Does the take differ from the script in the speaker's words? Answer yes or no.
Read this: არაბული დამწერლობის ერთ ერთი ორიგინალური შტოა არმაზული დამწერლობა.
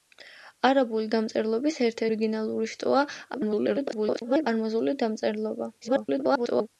yes